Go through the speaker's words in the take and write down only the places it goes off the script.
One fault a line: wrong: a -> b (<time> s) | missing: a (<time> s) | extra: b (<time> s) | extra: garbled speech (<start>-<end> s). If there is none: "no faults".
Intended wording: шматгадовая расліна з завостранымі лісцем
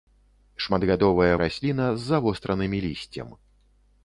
no faults